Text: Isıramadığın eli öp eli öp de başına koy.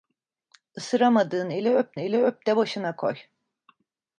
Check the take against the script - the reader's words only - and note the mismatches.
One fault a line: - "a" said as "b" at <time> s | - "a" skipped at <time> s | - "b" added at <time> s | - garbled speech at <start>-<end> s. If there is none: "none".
none